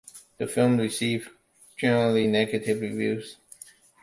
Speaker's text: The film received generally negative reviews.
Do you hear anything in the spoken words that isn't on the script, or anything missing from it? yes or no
no